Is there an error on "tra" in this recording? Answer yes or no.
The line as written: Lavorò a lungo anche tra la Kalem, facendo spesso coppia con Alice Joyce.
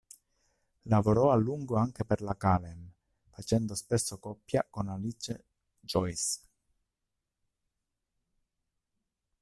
yes